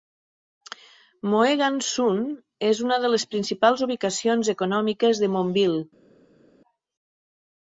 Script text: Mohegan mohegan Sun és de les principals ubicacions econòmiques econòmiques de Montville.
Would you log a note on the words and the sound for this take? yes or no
yes